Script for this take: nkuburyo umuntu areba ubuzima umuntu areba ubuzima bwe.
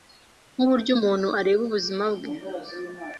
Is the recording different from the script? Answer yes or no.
yes